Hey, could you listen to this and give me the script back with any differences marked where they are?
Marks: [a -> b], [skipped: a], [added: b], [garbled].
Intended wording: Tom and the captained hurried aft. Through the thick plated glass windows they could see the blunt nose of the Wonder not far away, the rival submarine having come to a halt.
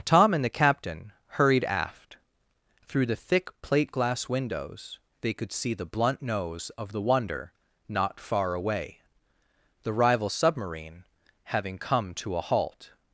Tom and the [captained -> captain] hurried aft. Through the thick [plated -> plate] glass windows they could see the blunt nose of the Wonder not far away, the rival submarine having come to a halt.